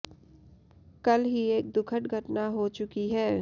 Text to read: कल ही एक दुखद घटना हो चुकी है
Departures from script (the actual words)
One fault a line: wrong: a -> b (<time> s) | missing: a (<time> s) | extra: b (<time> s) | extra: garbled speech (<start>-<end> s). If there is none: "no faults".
no faults